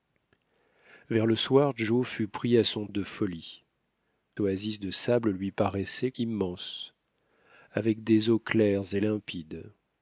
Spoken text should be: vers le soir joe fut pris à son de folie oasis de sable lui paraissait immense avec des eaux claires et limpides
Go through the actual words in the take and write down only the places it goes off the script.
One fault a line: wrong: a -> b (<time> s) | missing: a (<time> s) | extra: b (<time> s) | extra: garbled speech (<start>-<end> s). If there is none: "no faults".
no faults